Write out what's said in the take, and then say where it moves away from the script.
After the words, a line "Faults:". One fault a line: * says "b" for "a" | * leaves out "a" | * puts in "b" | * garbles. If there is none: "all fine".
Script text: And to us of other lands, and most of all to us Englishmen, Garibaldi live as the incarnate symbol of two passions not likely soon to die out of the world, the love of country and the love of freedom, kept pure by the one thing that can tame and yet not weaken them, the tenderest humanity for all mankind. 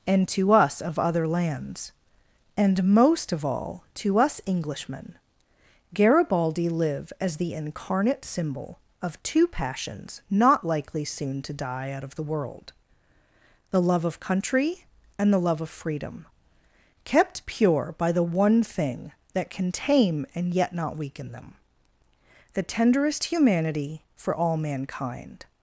And to us of other lands, and most of all to us Englishmen, Garibaldi live as the incarnate symbol of two passions not likely soon to die out of the world, the love of country and the love of freedom, kept pure by the one thing that can tame and yet not weaken them, the tenderest humanity for all mankind.
Faults:
all fine